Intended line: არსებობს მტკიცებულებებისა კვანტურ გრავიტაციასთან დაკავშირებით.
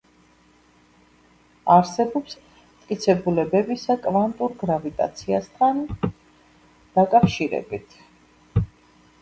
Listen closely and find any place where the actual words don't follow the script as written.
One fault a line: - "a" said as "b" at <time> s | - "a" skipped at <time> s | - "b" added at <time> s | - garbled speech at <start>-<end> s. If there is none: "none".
none